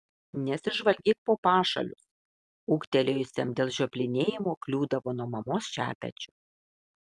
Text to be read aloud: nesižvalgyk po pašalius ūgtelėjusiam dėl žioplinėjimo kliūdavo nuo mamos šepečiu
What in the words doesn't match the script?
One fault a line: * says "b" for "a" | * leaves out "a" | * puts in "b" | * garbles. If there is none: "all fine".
all fine